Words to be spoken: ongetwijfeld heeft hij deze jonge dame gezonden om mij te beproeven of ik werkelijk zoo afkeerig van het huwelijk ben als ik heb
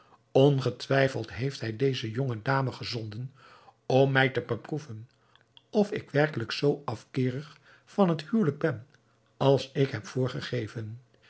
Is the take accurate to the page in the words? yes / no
yes